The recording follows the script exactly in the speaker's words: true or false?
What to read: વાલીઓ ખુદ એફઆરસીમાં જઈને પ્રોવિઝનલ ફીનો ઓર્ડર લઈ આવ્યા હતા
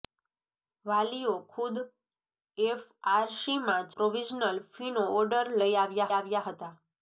false